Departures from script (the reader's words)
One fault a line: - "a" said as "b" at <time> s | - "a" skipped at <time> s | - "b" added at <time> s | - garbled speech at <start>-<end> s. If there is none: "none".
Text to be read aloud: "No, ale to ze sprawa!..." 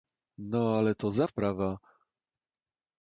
none